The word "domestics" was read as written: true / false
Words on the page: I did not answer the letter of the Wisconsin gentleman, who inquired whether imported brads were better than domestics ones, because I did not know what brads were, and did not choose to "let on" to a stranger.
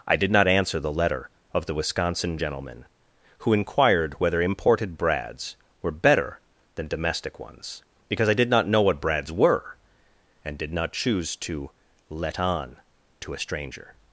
false